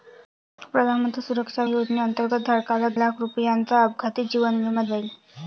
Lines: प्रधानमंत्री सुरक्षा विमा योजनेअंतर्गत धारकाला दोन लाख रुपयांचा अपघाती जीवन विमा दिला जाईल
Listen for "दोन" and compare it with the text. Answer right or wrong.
wrong